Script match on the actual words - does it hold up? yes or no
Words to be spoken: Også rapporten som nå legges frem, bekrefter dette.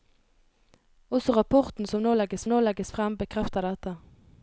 no